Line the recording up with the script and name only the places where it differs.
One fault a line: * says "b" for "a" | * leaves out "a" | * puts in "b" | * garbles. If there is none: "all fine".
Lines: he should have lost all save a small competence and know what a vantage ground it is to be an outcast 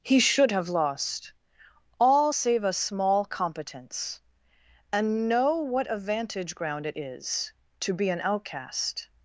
all fine